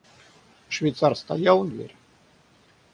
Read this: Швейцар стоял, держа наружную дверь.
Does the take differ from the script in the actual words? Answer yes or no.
yes